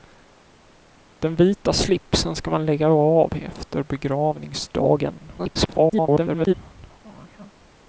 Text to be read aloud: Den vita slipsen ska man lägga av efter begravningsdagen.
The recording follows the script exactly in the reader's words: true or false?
false